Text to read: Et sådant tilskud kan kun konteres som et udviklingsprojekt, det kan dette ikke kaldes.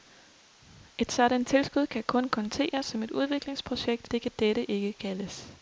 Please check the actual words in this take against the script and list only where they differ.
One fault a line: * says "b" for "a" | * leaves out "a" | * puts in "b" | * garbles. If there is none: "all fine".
all fine